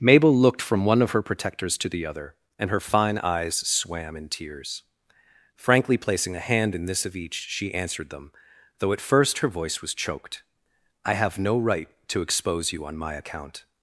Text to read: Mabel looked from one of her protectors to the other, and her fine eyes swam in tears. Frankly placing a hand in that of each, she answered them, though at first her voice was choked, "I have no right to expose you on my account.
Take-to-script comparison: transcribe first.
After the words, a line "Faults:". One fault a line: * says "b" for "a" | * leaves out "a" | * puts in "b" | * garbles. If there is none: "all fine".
Mabel looked from one of her protectors to the other, and her fine eyes swam in tears. Frankly placing a hand in this of each, she answered them, though at first her voice was choked, "I have no right to expose you on my account.
Faults:
* says "this" for "that"